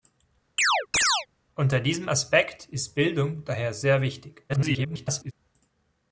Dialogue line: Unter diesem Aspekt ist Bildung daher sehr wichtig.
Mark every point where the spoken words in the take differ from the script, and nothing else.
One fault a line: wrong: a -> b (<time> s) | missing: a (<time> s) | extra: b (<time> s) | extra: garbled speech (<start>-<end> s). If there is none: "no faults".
extra: garbled speech (4.5-5.3 s)